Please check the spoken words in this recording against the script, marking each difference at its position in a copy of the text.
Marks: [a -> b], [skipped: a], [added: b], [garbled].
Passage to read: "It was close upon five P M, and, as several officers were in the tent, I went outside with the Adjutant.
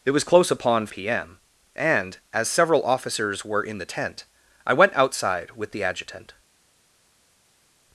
"It was close upon [skipped: five] P M, and, as several officers were in the tent, I went outside with the Adjutant.